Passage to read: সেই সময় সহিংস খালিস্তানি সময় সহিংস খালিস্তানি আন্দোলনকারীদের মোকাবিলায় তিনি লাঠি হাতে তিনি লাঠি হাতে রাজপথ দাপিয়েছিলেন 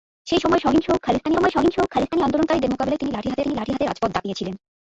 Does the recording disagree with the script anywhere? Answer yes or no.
no